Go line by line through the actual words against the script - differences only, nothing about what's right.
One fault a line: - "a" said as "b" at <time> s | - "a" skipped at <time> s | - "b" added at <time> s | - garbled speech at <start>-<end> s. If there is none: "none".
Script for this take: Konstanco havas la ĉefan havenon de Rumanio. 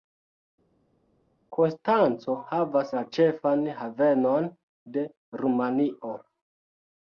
none